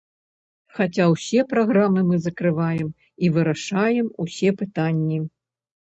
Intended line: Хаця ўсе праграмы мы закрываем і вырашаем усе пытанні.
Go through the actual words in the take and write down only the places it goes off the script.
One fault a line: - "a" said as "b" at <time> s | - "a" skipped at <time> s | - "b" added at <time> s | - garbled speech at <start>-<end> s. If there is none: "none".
none